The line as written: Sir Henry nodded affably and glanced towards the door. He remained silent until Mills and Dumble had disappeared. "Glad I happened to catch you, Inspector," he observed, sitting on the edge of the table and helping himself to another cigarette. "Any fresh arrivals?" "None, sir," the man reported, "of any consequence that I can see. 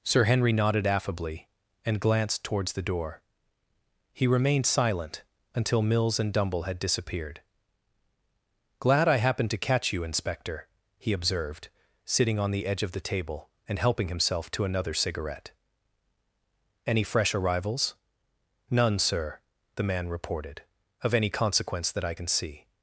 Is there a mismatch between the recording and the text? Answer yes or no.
no